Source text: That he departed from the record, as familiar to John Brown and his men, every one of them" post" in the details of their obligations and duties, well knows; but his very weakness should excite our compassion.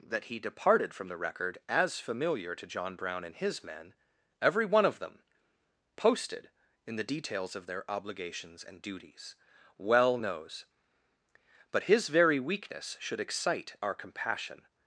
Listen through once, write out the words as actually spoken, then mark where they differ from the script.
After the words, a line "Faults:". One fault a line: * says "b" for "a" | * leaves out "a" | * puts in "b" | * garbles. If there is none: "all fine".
That he departed from the record, as familiar to John Brown and his men, every one of them" posted" in the details of their obligations and duties, well knows; but his very weakness should excite our compassion.
Faults:
* says "posted" for "post"